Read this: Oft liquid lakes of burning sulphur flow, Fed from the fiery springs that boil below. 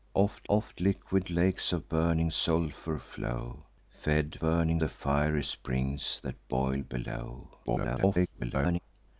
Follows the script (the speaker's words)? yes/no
no